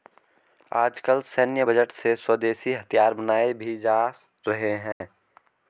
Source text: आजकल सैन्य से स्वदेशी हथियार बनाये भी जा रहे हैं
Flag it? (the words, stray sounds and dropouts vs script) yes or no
yes